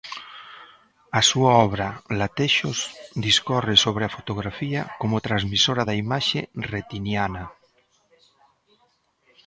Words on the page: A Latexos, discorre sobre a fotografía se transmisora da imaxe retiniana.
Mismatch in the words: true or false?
true